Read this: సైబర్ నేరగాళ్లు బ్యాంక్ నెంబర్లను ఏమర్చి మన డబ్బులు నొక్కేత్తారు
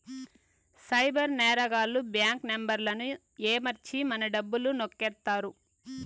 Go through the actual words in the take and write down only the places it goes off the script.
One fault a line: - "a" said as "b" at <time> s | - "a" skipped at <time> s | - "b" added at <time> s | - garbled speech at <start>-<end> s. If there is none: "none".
none